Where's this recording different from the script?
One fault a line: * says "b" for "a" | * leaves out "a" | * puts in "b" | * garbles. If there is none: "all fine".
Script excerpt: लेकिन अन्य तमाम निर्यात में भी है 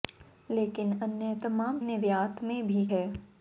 all fine